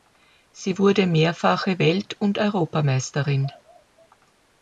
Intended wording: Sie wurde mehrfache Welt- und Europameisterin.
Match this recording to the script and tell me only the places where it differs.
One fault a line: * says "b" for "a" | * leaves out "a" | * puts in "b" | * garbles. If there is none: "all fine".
all fine